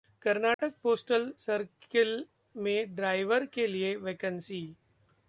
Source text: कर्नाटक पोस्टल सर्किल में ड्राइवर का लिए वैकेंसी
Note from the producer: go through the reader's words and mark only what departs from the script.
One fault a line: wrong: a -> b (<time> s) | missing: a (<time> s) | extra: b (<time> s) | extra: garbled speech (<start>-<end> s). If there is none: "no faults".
wrong: का -> के (3.5 s)